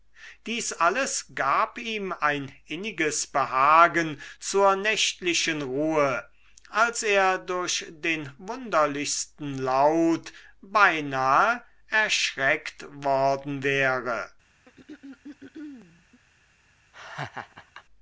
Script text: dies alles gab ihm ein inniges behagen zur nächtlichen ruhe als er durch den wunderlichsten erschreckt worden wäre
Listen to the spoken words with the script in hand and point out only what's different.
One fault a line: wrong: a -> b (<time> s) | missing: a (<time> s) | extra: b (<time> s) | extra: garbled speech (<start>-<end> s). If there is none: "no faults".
extra: laut beinahe (9.6 s)